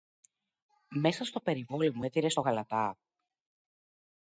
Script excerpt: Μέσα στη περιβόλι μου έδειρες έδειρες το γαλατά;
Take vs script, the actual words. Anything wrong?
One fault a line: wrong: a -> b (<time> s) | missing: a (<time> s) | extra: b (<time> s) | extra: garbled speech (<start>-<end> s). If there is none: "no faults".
wrong: στη -> στο (1.2 s)
missing: έδειρες (2.3 s)